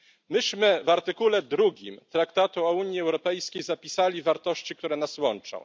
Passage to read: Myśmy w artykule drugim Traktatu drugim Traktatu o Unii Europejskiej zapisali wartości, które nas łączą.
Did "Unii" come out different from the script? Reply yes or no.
no